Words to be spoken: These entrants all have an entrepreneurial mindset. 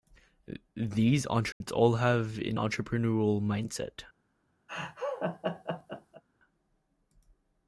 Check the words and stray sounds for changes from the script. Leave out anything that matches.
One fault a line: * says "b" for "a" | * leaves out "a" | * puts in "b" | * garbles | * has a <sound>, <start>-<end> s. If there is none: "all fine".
* has a dropout, 1.5-1.6 s
* has a laugh, 4.7-6.2 s